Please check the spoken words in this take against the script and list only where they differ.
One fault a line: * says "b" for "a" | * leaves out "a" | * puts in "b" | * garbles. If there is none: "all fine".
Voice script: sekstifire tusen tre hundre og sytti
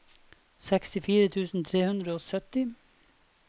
all fine